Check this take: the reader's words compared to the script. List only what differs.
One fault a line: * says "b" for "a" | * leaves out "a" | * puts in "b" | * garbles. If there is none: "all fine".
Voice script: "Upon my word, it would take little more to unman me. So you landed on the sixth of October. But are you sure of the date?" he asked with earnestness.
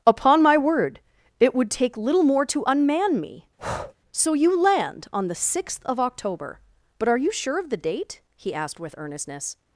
* says "land" for "landed"